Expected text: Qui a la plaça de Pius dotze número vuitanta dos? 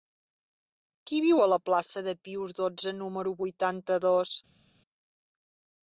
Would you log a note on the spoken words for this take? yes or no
yes